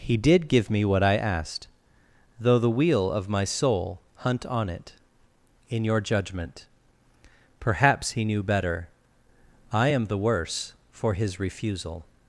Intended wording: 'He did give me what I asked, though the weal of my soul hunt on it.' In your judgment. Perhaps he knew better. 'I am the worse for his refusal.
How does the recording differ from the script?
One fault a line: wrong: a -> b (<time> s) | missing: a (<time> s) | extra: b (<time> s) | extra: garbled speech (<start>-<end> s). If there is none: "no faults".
no faults